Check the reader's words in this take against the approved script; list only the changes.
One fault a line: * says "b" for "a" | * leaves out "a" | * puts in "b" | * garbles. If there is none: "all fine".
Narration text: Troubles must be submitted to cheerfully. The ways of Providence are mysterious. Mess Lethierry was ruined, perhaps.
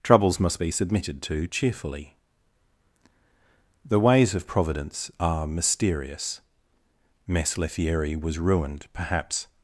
all fine